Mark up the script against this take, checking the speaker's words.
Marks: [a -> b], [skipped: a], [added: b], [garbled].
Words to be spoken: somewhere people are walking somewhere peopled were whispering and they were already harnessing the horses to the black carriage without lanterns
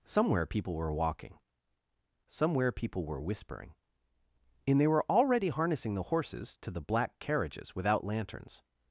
somewhere people [are -> were] walking somewhere [peopled -> people] were whispering and they were already harnessing the horses to the black [carriage -> carriages] without lanterns